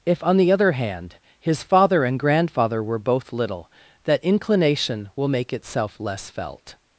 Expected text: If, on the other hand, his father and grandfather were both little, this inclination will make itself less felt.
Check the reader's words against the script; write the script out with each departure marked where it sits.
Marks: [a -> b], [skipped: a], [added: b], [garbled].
If, on the other hand, his father and grandfather were both little, [this -> that] inclination will make itself less felt.